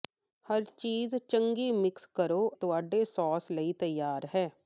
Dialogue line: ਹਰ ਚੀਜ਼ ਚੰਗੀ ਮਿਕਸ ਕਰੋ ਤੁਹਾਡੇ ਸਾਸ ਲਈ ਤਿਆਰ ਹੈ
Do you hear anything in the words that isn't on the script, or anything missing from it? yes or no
no